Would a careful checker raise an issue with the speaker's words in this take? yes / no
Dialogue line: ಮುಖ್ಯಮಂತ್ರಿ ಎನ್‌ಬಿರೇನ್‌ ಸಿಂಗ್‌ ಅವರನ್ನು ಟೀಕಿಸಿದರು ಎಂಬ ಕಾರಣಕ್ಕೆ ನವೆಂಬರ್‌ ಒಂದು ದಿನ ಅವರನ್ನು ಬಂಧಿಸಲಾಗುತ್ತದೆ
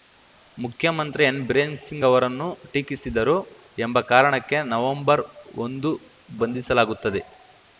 yes